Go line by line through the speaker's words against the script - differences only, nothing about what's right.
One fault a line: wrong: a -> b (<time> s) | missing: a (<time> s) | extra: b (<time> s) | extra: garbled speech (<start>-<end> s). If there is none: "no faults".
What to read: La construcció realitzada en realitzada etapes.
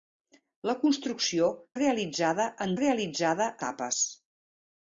no faults